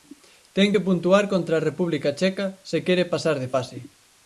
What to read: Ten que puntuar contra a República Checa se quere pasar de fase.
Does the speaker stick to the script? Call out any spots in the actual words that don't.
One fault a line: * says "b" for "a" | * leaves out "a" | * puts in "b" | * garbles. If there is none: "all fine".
all fine